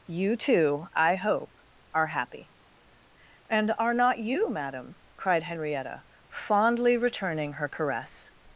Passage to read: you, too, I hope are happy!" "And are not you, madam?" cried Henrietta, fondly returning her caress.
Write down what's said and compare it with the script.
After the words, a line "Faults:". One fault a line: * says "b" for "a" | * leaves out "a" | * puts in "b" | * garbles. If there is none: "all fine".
you, too, I hope are happy!" "And are not you, madam?" cried Henrietta, fondly returning her caress.
Faults:
all fine